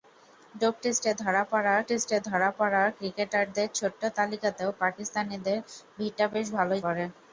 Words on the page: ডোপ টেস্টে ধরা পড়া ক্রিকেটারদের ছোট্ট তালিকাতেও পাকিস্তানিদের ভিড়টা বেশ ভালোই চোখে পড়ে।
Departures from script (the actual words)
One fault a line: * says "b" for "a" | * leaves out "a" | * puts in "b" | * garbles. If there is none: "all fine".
* puts in "টেস্টে ধরা পড়া"
* leaves out "চোখে"